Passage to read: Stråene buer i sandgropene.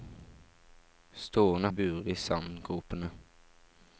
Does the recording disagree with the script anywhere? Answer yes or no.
no